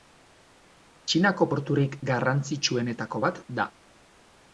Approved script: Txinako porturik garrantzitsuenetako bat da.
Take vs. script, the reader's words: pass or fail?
pass